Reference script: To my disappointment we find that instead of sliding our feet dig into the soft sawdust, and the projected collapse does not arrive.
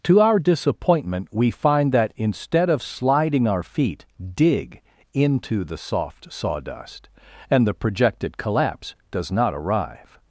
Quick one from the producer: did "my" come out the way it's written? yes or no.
no